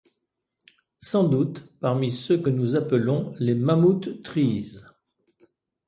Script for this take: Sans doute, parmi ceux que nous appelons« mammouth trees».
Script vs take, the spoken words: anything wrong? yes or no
yes